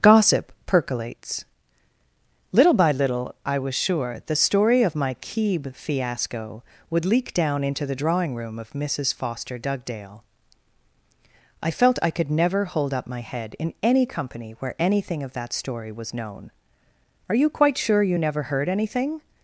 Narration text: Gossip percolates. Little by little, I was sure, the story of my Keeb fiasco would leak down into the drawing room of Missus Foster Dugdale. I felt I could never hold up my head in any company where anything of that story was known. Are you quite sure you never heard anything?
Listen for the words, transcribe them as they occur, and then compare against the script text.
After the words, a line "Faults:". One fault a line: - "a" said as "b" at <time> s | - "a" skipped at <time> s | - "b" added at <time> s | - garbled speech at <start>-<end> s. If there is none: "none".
Gossip percolates. Little by little, I was sure, the story of my Keeb fiasco would leak down into the drawing room of Missus Foster Dugdale. I felt I could never hold up my head in any company where anything of that story was known. Are you quite sure you never heard anything?
Faults:
none